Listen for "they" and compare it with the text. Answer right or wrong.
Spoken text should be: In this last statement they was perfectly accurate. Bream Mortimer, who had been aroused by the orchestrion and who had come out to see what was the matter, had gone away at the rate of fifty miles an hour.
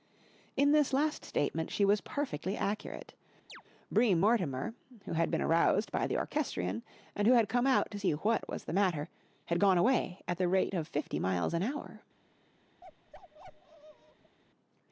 wrong